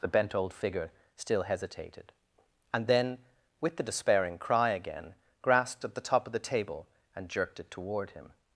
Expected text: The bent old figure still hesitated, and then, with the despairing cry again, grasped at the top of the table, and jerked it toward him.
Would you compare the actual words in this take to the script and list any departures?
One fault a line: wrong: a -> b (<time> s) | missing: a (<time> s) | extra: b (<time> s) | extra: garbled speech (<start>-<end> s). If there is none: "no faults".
no faults